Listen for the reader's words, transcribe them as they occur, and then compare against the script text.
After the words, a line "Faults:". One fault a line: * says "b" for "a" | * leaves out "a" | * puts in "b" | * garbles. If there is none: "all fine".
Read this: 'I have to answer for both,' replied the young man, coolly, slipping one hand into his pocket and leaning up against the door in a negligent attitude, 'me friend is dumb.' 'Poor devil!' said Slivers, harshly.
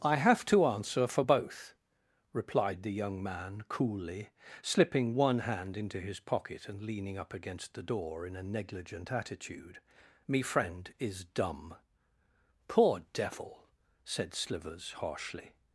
'I have to answer for both,' replied the young man, coolly, slipping one hand into his pocket and leaning up against the door in a negligent attitude, 'me friend is dumb.' 'Poor devil!' said Slivers, harshly.
Faults:
all fine